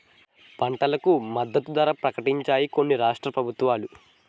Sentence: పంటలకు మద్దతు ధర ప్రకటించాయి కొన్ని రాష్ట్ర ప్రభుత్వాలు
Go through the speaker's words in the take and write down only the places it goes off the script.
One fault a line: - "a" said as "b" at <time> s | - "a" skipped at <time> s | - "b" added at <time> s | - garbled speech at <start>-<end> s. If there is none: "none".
none